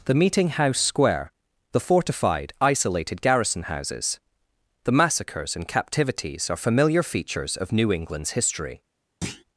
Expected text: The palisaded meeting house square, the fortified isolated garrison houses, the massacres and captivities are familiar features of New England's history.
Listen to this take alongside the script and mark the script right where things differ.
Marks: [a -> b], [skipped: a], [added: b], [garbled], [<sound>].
The [skipped: palisaded] meeting house square, the fortified isolated garrison houses, the massacres and captivities are familiar features of New England's history. [thud]